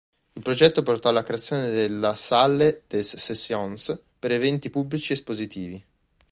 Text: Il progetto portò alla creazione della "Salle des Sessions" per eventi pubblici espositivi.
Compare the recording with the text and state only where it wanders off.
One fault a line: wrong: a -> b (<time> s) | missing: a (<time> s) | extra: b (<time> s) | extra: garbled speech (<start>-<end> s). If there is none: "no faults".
no faults